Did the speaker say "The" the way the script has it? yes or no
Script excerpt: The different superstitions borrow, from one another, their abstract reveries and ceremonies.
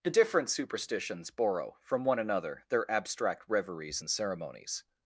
yes